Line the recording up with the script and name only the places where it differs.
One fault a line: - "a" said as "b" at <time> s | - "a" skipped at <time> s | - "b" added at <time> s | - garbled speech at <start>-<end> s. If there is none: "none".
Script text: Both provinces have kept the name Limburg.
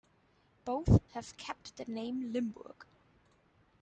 - "provinces" skipped at 1.1 s